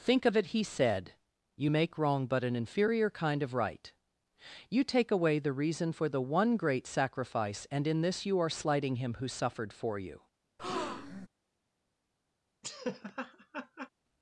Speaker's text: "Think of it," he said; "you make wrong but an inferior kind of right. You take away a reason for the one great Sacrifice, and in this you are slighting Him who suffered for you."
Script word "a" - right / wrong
wrong